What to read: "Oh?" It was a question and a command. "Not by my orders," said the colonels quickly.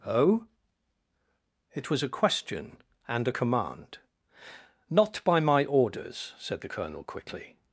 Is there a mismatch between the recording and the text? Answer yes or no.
yes